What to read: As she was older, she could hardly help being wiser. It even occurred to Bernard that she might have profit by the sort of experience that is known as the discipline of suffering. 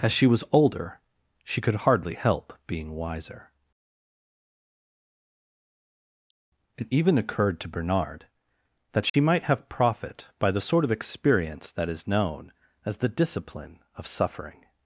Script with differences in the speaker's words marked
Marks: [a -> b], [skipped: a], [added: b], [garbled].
As she was older, she could hardly help being wiser. It even occurred to Bernard that she might have profit by the sort of experience that is known as the discipline of suffering.